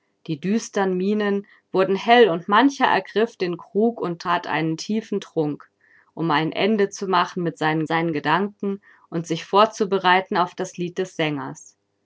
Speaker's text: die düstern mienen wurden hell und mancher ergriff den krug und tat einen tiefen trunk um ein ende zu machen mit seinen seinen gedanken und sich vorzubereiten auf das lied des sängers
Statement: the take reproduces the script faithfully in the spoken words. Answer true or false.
true